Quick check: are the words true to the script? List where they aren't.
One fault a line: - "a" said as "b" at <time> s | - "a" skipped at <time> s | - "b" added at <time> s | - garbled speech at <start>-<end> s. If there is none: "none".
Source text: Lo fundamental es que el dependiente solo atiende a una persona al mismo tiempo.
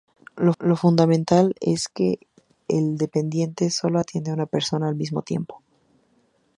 - "lo" added at 0.6 s